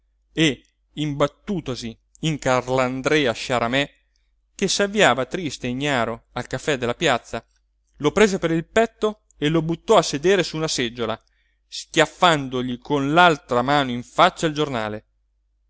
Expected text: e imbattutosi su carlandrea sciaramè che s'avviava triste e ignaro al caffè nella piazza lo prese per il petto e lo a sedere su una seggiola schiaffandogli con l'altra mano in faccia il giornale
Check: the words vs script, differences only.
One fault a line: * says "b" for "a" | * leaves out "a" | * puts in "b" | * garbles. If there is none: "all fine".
* says "in" for "su"
* says "della" for "nella"
* puts in "buttò"